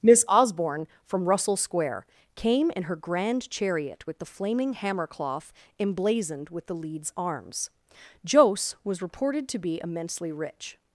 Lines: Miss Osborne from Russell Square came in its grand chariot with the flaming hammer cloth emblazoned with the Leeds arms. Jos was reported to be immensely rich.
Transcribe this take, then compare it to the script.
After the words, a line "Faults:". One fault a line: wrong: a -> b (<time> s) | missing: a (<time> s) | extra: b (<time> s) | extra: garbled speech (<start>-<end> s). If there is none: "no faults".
Miss Osborne from Russell Square came in her grand chariot with the flaming hammer cloth emblazoned with the Leeds arms. Jos was reported to be immensely rich.
Faults:
wrong: its -> her (2.8 s)